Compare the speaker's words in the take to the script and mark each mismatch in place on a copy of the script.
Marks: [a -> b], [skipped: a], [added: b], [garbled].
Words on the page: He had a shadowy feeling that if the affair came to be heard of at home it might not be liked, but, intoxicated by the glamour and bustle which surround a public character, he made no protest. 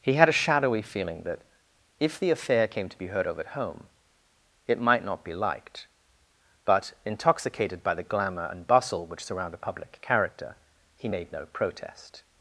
He had a shadowy feeling that if the affair came to be heard of at home it might not be liked, but, intoxicated by the glamour and bustle which surround a public character, he made no protest.